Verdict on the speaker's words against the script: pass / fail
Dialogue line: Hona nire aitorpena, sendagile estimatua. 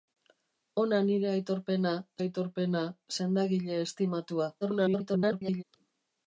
fail